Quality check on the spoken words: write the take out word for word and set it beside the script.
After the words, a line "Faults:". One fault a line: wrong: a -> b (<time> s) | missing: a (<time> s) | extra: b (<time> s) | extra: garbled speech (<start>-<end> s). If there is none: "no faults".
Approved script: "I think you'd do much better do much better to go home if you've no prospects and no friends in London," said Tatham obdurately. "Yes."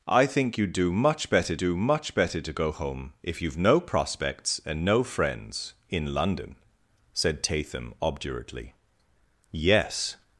"I think you'd do much better do much better to go home if you've no prospects and no friends in London," said Tatham obdurately. "Yes."
Faults:
no faults